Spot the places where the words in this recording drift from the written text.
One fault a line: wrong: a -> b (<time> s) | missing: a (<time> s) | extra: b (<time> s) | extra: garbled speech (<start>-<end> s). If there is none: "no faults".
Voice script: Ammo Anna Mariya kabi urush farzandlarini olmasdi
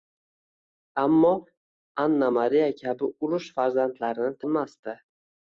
no faults